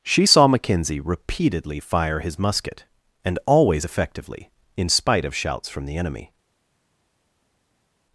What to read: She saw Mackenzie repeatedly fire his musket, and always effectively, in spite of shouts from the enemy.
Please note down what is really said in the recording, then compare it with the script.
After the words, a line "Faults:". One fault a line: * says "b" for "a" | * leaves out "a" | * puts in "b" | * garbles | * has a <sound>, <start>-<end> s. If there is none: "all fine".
She saw Mackenzie repeatedly fire his musket, and always effectively, in spite of shouts from the enemy.
Faults:
all fine